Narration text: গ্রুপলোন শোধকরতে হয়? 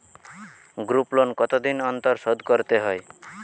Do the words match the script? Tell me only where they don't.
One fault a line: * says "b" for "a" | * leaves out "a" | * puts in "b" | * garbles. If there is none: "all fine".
* puts in "কতদিন অন্তর"